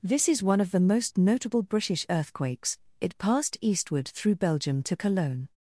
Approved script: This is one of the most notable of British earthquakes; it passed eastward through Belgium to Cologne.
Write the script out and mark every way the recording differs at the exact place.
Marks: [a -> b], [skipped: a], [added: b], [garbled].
This is one of the most notable [skipped: of] British earthquakes; it passed eastward through Belgium to Cologne.